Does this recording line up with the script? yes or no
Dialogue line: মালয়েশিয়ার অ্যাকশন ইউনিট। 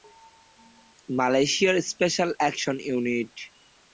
no